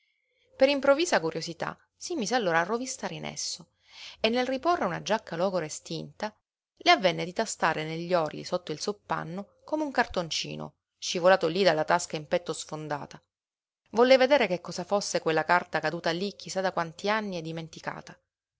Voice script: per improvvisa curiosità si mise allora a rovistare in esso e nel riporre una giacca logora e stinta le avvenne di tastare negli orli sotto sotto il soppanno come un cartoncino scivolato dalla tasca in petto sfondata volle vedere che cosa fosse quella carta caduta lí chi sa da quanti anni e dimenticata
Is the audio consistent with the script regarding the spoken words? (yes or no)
no